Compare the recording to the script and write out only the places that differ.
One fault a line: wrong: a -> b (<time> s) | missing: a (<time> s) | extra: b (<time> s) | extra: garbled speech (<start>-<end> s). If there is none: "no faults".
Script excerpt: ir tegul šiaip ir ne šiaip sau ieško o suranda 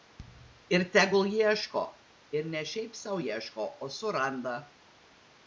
wrong: šiaip -> ieško (1.3 s)